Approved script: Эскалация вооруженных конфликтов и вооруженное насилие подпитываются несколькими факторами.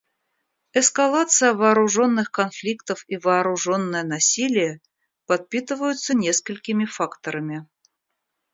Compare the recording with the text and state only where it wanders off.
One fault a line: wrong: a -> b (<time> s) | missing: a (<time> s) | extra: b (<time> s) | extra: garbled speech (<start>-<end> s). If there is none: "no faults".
no faults